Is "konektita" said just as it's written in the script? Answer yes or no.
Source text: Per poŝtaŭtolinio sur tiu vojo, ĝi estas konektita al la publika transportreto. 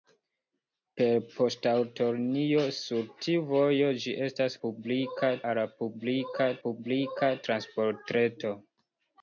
no